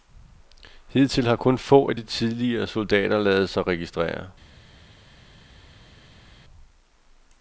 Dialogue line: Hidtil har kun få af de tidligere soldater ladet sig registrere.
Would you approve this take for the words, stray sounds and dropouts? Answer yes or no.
yes